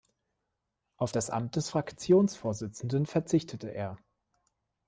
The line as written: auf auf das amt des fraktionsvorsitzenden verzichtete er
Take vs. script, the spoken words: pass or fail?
fail